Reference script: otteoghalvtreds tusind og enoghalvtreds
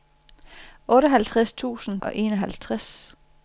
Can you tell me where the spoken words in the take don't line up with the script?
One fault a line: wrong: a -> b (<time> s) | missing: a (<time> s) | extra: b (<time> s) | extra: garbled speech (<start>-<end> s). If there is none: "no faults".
no faults